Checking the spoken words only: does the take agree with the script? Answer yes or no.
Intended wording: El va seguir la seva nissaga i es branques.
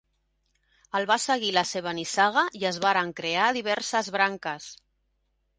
no